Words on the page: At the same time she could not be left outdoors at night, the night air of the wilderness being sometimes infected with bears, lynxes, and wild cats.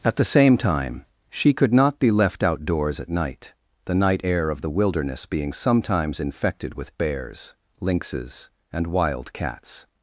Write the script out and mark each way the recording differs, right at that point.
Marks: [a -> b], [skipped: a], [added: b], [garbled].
At the same time she could not be left outdoors at night, the night air of the wilderness being sometimes infected with bears, lynxes, and wild cats.